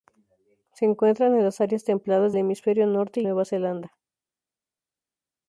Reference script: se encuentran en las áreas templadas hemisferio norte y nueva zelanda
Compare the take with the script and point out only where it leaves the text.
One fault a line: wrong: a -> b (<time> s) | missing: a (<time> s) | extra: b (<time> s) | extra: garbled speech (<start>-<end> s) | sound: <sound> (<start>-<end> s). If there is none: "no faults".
no faults